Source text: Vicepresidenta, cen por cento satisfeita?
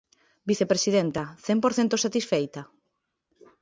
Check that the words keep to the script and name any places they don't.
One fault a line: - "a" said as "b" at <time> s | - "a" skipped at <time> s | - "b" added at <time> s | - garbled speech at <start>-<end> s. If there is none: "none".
none